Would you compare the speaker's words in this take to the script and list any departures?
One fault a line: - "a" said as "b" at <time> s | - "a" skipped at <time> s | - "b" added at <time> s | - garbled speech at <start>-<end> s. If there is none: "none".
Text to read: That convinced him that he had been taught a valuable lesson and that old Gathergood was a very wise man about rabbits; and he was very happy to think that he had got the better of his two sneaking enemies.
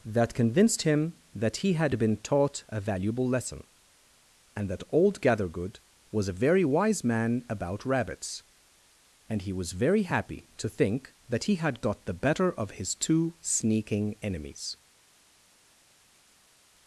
none